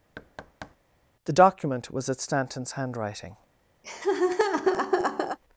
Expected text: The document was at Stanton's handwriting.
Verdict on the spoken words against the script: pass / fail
pass